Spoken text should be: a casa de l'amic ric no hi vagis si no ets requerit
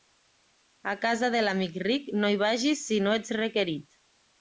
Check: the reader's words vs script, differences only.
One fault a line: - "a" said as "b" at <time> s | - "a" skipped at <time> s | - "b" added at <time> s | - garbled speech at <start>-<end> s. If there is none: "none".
none